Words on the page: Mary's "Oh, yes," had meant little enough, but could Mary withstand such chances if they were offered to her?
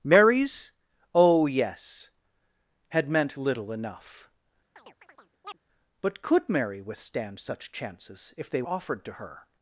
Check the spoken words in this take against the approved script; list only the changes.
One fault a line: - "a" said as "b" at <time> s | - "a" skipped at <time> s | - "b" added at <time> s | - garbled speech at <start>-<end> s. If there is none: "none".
- "were" skipped at 8.6 s